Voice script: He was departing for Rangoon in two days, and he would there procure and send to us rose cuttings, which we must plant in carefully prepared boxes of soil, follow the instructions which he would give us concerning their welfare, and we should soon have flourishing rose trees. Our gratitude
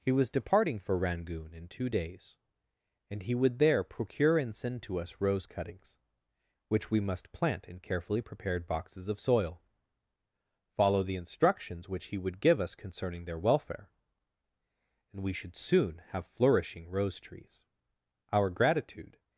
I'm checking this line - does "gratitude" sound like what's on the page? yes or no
yes